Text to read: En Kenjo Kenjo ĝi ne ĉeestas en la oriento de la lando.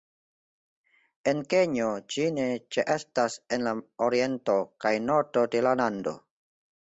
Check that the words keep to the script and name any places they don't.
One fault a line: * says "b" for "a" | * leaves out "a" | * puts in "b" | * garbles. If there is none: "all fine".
* leaves out "Kenjo"
* puts in "kaj nordo"